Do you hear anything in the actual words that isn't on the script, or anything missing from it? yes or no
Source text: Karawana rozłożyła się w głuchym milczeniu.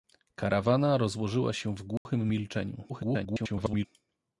yes